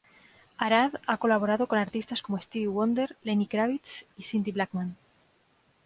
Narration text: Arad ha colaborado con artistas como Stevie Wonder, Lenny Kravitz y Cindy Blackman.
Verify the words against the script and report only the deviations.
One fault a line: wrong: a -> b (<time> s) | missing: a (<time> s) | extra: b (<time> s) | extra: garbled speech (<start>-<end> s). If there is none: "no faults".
no faults